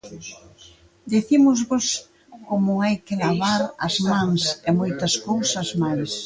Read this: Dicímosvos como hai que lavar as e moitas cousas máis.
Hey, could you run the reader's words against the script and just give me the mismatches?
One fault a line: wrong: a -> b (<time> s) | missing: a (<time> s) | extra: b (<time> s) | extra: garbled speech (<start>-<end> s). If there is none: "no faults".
extra: mans (4.1 s)